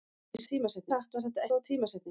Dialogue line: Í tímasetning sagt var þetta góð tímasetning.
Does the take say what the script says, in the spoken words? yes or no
yes